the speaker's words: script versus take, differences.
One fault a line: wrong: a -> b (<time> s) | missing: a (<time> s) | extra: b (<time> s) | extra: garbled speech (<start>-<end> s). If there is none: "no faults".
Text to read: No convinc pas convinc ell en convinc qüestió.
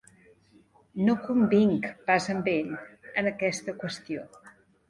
wrong: convinc -> amb (2.4 s)
wrong: convinc -> aquesta (3.4 s)